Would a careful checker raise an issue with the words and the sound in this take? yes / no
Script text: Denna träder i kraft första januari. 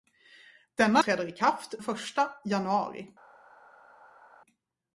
no